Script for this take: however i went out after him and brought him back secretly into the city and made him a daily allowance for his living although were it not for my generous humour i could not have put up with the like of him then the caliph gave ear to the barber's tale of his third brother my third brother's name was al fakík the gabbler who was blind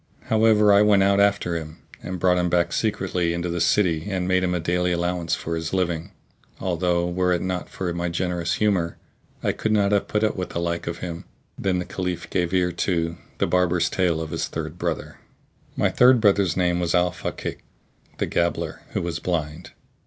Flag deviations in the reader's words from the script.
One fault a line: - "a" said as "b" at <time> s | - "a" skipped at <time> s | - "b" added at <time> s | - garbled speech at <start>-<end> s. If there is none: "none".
none